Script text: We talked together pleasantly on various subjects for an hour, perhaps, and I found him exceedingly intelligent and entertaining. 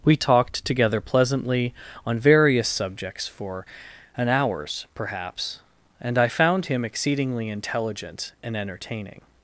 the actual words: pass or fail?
fail